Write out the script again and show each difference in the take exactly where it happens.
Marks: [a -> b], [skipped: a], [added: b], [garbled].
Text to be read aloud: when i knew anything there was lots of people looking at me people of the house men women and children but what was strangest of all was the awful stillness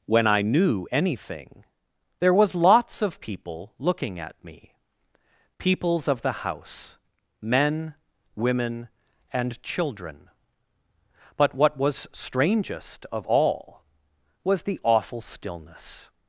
when i knew anything there was lots of people looking at me [people -> peoples] of the house men women and children but what was strangest of all was the awful stillness